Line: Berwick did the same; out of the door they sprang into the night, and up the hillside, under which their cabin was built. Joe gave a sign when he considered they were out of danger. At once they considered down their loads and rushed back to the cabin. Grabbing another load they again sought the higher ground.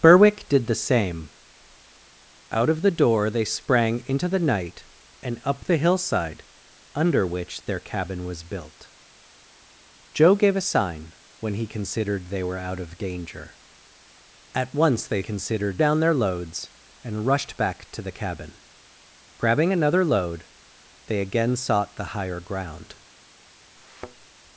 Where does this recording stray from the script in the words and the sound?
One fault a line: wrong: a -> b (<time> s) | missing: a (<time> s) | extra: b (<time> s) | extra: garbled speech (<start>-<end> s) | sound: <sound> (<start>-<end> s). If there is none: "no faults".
sound: thud (23.8-24.3 s)